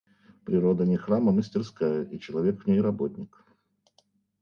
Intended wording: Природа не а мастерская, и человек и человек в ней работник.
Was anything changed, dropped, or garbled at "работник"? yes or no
no